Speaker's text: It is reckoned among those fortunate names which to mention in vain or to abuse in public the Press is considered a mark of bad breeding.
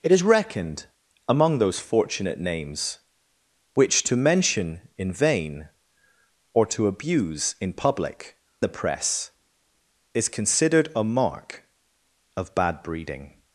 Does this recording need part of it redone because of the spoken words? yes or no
no